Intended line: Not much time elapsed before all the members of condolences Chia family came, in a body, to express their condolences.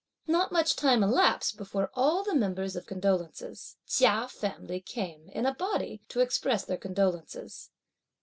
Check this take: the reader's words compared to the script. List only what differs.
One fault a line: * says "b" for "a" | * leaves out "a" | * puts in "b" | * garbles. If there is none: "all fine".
all fine